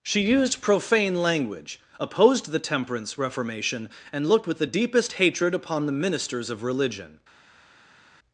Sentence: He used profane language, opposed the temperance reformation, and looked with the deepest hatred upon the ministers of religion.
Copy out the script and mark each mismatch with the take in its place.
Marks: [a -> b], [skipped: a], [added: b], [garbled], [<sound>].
[He -> She] used profane language, opposed the temperance reformation, and looked with the deepest hatred upon the ministers of religion.